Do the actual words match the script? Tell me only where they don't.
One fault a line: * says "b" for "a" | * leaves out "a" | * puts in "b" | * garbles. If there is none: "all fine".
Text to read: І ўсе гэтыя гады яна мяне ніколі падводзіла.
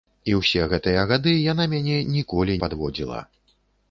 all fine